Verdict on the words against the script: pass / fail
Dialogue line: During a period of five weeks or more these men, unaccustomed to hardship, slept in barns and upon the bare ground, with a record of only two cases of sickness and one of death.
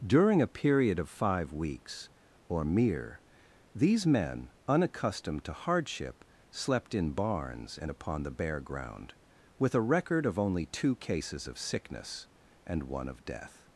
fail